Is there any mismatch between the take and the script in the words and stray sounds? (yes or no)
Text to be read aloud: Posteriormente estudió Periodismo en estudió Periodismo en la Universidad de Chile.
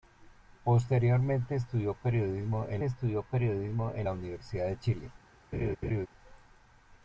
yes